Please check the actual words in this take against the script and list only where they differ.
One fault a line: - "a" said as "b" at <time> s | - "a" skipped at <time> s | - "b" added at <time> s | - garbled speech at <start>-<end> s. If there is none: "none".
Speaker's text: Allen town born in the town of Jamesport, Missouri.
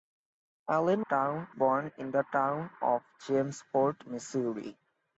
none